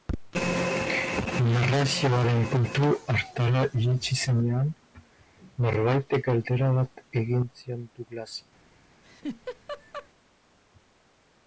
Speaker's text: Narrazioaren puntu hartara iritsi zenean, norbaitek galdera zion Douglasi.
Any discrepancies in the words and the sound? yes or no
yes